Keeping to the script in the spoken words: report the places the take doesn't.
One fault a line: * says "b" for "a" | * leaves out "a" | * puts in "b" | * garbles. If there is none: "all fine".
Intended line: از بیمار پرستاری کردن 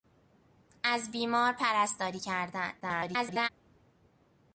* garbles